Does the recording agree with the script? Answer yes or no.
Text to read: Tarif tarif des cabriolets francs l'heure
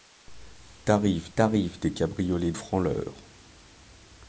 yes